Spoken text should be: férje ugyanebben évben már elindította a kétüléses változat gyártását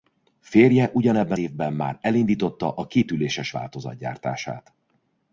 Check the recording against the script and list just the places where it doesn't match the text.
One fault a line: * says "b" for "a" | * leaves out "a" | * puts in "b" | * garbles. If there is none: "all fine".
all fine